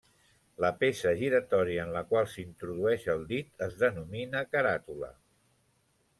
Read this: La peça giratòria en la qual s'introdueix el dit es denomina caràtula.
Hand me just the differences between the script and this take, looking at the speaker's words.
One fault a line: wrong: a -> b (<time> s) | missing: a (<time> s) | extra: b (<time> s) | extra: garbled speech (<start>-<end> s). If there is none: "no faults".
no faults